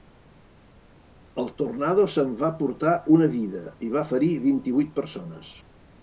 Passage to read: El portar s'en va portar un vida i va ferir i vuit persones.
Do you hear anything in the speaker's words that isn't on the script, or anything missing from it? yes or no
yes